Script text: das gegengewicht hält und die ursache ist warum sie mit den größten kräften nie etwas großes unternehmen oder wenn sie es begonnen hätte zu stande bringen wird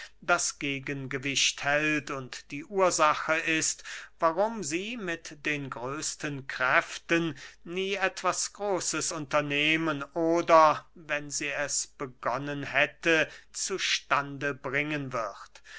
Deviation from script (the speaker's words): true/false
false